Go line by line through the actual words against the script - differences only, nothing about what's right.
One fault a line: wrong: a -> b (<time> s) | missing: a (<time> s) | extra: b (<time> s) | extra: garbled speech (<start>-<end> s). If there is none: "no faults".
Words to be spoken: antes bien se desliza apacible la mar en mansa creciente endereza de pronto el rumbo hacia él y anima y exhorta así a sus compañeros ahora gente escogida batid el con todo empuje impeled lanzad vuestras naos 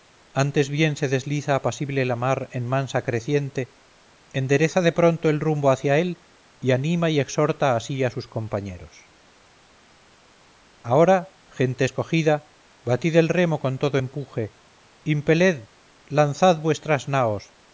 extra: remo (13.3 s)